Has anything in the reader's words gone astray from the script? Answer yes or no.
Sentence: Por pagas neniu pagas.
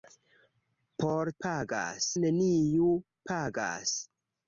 no